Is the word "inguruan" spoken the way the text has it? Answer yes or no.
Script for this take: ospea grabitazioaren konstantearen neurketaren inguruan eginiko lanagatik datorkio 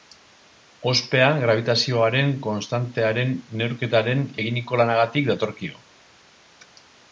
no